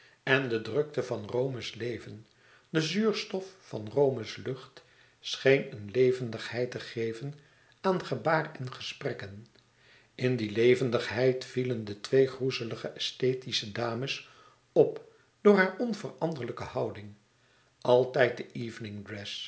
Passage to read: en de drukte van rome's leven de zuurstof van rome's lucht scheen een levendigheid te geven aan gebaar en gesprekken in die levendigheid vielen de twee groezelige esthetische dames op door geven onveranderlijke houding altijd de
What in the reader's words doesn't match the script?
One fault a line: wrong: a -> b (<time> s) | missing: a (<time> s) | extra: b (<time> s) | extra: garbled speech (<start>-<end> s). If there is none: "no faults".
wrong: geven -> hare (15.6 s)